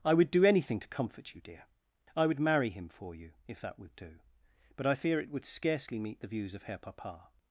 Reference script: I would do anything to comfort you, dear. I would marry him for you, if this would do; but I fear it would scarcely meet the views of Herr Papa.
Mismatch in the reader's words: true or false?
true